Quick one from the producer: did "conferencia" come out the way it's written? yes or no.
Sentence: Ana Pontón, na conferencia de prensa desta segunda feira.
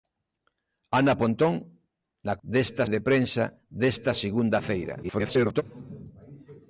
no